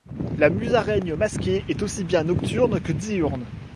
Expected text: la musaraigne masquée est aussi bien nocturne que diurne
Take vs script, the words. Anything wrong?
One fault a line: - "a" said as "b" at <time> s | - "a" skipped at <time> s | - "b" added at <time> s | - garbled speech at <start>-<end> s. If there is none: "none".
none